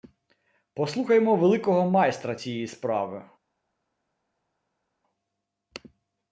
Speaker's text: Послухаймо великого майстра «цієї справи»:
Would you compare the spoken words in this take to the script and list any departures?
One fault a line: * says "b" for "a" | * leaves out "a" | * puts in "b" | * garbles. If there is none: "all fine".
all fine